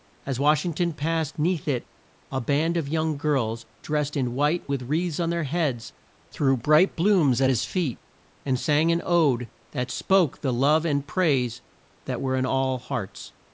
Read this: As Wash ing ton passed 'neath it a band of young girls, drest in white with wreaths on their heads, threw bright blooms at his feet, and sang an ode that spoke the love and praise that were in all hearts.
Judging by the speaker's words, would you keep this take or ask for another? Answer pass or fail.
pass